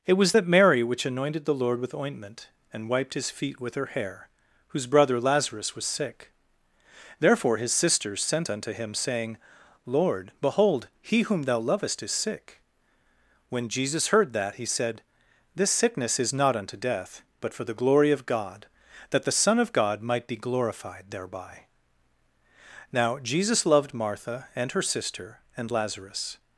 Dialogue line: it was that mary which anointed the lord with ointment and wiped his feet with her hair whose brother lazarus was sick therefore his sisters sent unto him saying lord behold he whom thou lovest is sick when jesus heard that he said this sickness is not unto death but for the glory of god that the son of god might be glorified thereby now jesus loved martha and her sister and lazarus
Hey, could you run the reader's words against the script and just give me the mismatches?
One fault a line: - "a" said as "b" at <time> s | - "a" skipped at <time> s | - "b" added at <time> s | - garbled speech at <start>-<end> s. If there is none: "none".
none